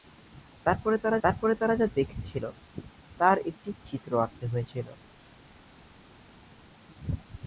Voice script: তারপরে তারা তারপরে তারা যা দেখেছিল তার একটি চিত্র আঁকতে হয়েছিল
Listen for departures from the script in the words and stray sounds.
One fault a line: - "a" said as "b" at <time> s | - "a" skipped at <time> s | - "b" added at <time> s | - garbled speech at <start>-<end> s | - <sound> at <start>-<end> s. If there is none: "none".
none